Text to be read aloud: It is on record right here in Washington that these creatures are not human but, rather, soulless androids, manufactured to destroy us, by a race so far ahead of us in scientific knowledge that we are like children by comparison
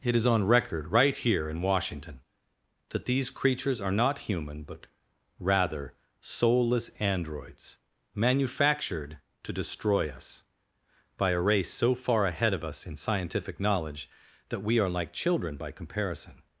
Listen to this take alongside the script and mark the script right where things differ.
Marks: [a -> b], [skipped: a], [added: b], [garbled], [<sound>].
It is on record right here in Washington that these creatures are not human but, rather, soulless androids, manufactured to destroy us, by a race so far ahead of us in scientific knowledge that we are like children by comparison